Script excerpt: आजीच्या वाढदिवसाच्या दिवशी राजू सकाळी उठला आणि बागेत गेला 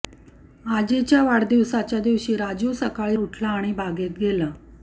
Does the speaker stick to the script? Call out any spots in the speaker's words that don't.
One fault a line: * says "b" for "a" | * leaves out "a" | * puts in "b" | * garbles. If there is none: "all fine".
all fine